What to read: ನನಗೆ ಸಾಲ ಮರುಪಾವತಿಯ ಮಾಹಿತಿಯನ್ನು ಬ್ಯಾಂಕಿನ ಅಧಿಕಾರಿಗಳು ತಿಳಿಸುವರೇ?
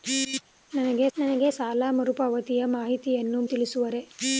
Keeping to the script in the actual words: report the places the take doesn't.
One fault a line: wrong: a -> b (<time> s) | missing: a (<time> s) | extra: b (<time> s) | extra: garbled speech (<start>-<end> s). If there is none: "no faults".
extra: ನನಗೆ (1.1 s)
missing: ಬ್ಯಾಂಕಿನ ಅಧಿಕಾರಿಗಳು (3.4 s)